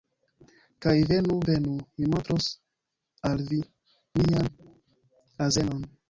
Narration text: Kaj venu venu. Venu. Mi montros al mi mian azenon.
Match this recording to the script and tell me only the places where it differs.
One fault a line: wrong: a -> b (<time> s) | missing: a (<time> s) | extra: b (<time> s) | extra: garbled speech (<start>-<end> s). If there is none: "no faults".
missing: Venu (1.7 s)
wrong: mi -> vi (3.5 s)